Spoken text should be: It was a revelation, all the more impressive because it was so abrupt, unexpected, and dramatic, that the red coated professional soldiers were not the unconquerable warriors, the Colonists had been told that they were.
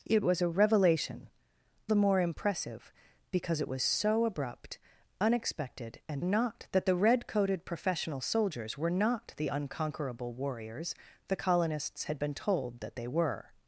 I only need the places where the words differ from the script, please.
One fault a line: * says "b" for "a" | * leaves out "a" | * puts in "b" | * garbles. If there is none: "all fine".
* leaves out "all"
* says "not" for "dramatic"